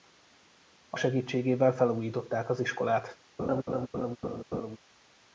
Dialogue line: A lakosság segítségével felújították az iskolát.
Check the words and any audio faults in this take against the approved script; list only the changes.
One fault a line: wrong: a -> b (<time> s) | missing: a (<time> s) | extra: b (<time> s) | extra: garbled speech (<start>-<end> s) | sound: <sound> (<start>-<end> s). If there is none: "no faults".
missing: lakosság (1.0 s)
sound: laugh (3.4-4.8 s)